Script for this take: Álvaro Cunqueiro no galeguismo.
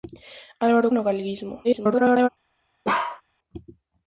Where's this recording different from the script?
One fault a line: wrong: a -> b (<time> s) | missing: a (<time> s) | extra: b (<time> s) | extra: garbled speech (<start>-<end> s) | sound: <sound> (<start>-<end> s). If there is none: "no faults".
missing: Cunqueiro (0.9 s)
extra: garbled speech (1.6-2.3 s)
sound: bark (2.8-3.2 s)